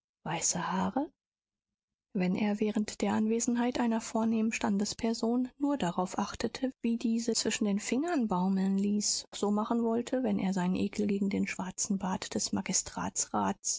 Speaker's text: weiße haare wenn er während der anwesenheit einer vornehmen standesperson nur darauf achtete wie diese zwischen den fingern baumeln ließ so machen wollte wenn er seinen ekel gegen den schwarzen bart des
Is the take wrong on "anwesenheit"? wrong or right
right